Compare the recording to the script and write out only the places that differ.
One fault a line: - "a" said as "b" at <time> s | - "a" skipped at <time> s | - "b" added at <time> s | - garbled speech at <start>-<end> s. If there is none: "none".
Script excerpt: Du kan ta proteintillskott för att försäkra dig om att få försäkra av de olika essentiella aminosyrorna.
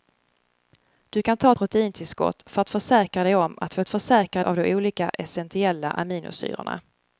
none